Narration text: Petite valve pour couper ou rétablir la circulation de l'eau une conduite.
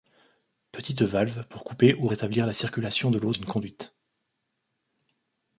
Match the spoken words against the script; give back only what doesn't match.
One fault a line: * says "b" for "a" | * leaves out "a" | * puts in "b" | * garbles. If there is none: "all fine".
all fine